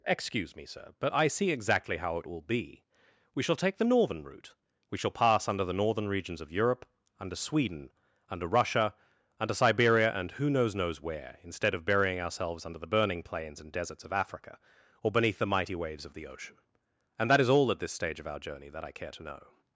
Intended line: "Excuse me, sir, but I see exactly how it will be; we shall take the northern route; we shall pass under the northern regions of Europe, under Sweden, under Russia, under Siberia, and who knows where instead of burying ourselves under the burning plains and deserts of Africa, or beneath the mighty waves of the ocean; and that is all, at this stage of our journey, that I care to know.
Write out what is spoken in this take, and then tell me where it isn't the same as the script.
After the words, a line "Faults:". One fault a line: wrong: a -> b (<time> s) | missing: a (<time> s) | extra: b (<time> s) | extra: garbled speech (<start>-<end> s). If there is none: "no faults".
"Excuse me, sir, but I see exactly how it will be; we shall take the northern route; we shall pass under the northern regions of Europe, under Sweden, under Russia, under Siberia, and who knows knows where instead of burying ourselves under the burning plains and deserts of Africa, or beneath the mighty waves of the ocean; and that is all, at this stage of our journey, that I care to know.
Faults:
extra: knows (10.7 s)